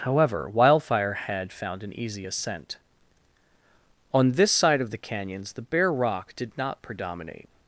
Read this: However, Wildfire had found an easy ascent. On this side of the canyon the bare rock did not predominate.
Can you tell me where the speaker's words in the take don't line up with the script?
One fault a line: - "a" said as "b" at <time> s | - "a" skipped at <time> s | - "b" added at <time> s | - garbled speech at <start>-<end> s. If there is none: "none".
- "canyon" said as "canyons" at 5.0 s